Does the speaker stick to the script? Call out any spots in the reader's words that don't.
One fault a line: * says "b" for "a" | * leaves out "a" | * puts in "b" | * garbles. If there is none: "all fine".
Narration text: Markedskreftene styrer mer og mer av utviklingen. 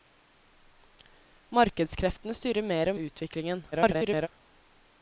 * leaves out "mer"
* garbles